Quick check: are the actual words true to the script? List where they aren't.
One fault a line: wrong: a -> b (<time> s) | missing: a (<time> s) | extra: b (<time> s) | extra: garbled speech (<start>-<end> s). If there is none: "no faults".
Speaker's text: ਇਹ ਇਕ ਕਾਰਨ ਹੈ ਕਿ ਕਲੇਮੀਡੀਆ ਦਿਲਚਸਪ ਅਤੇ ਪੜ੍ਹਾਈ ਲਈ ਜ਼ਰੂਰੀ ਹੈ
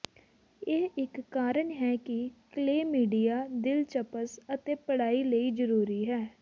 no faults